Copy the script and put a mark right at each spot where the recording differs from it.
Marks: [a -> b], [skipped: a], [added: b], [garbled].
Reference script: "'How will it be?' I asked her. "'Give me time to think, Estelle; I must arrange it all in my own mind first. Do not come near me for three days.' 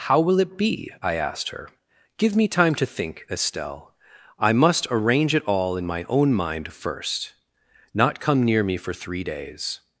"'How will it be?' I asked her. "'Give me time to think, Estelle; I must arrange it all in my own mind first. [skipped: Do] not come near me for three days.'